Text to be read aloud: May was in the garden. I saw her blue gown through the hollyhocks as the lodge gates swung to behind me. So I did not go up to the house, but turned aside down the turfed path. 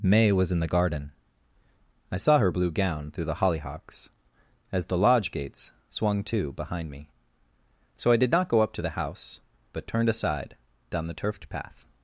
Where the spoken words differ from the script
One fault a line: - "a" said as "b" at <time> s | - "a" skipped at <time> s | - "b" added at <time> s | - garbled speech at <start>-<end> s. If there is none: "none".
none